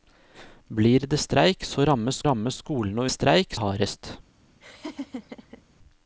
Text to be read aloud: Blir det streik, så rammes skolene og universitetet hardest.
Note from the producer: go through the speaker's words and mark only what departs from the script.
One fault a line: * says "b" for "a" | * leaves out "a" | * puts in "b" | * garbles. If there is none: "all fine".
* puts in "rammes"
* says "streik" for "universitetet"